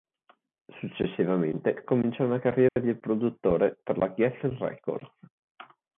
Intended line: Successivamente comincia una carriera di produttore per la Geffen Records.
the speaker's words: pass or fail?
pass